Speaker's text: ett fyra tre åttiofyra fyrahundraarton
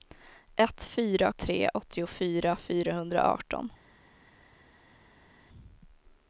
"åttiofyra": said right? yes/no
yes